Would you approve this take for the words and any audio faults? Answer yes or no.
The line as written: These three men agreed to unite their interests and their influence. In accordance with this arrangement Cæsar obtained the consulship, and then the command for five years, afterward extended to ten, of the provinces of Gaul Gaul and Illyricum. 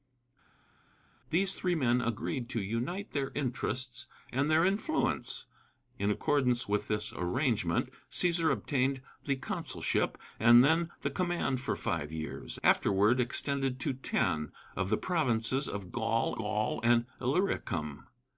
yes